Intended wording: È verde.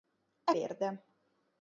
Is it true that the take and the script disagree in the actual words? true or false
false